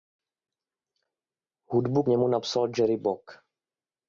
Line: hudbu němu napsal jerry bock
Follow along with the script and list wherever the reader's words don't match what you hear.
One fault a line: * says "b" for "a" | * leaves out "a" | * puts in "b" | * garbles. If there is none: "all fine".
all fine